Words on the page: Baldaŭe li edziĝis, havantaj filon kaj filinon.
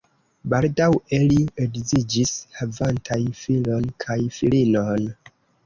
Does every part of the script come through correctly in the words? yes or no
yes